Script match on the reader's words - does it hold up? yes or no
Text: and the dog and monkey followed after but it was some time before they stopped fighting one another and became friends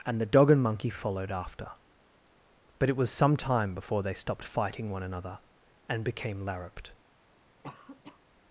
no